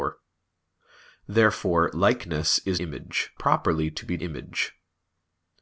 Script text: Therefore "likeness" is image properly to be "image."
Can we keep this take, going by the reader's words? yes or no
yes